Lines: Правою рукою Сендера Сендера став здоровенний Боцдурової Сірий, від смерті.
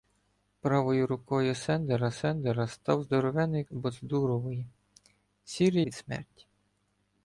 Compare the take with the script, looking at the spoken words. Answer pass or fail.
pass